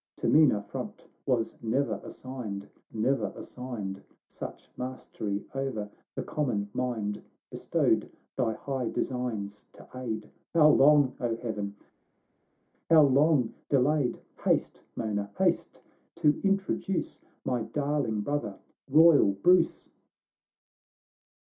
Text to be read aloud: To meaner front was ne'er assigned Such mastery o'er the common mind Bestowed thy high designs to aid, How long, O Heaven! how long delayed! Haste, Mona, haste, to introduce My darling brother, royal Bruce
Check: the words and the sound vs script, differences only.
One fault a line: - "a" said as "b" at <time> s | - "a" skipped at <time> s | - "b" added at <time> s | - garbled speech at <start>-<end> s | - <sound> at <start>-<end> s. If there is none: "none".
- "ne'er assigned" added at 2.9 s